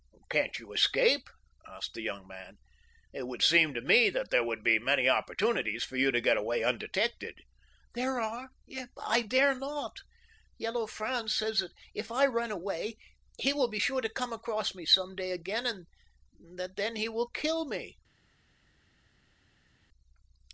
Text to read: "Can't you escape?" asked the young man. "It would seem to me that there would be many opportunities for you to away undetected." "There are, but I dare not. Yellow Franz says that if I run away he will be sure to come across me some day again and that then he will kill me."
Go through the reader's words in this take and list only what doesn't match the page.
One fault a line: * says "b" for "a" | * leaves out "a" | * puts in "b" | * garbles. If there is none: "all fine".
* puts in "get"